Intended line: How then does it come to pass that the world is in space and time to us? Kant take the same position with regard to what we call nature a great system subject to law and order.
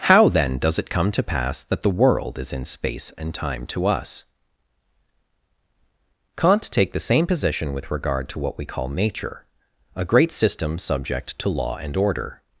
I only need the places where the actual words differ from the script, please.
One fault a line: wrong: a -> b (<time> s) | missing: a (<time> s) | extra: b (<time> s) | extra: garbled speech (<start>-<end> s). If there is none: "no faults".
no faults